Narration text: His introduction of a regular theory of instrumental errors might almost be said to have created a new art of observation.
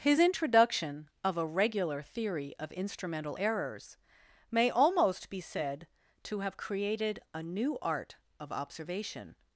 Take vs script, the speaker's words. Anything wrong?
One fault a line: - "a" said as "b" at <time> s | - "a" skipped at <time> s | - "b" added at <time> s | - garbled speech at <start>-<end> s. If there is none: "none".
- "might" said as "may" at 4.5 s